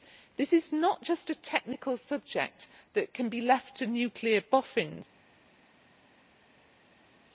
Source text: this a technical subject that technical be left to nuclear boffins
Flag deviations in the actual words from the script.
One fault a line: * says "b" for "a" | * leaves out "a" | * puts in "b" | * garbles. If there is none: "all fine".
* puts in "is not just"
* says "can" for "technical"